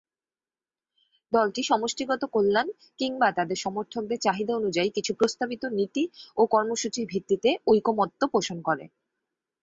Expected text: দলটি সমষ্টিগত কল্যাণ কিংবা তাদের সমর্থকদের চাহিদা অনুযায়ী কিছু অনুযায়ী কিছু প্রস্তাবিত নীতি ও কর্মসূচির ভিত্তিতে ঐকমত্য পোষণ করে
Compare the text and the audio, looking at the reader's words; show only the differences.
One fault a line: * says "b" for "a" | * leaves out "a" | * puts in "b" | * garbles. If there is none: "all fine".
* leaves out "অনুযায়ী কিছু"